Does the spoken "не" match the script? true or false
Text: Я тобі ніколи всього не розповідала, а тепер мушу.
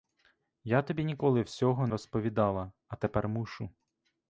false